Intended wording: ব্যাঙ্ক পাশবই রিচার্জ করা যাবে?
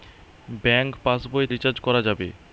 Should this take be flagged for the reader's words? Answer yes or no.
no